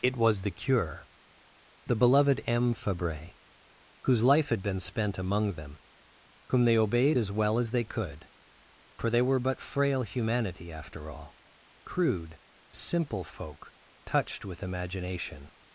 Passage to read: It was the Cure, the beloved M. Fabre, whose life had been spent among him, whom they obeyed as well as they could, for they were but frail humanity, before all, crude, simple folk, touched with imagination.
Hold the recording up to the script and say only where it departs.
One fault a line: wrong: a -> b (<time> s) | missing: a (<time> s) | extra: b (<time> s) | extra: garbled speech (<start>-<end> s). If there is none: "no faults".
wrong: him -> them (5.5 s)
wrong: before -> after (10.7 s)